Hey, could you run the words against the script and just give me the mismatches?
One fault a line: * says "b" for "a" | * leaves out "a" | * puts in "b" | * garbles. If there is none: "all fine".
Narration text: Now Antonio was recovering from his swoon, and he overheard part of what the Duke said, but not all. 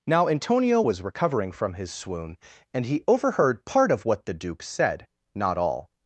* leaves out "but"